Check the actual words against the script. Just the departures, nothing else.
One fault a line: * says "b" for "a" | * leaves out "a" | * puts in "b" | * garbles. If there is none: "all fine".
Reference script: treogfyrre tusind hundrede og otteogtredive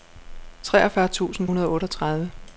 all fine